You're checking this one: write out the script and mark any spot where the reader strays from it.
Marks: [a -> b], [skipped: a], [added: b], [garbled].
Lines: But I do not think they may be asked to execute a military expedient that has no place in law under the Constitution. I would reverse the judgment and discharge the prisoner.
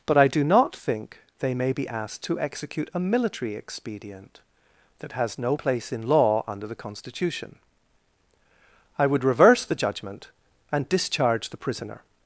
But I do not think they may be asked to execute a military expedient that has no place in law under the Constitution. I would reverse the judgment and discharge the prisoner.